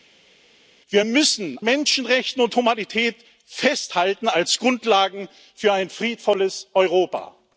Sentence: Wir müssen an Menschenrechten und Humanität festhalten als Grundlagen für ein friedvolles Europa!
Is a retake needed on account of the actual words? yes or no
yes